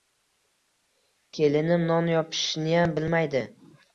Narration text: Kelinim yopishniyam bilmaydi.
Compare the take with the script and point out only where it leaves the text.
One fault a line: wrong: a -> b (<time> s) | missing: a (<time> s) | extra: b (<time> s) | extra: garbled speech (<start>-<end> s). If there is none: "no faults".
extra: non (1.9 s)